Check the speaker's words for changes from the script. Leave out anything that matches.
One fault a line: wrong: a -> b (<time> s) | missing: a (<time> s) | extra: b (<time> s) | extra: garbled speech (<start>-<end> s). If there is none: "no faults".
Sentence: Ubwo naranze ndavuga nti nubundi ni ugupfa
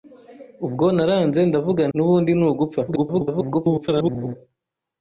missing: nti (1.8 s)
extra: garbled speech (2.9-4.4 s)